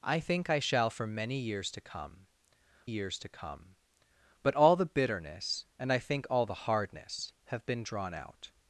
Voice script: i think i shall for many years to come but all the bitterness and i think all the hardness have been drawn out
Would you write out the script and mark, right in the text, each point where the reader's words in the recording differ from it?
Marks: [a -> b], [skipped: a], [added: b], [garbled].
i think i shall for many years to come [added: years to come] but all the bitterness and i think all the hardness have been drawn out